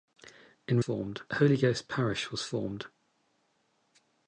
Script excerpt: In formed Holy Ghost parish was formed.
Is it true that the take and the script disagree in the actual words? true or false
false